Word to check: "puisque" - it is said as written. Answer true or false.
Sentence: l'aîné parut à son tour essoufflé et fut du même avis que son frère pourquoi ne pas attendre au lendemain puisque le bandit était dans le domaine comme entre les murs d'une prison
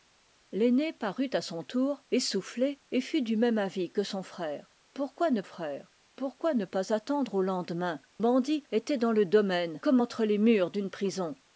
false